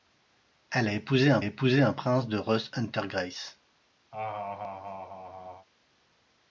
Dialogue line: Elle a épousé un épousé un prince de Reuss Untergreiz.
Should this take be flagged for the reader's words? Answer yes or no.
no